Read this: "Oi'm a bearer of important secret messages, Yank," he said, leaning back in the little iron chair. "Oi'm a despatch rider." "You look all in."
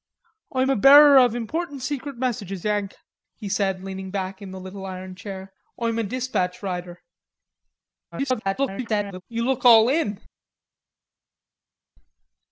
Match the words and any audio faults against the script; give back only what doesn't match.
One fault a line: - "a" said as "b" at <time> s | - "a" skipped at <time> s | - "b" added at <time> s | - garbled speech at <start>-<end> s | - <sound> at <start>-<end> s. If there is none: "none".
- garbled speech at 8.1-9.2 s